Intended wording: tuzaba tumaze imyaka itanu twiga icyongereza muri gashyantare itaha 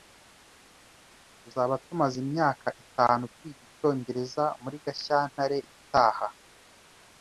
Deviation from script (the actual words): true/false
false